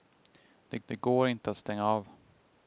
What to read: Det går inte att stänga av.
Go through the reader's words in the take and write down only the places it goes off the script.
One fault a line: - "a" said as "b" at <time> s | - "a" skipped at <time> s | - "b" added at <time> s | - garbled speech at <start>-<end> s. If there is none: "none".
- "det" added at 0.8 s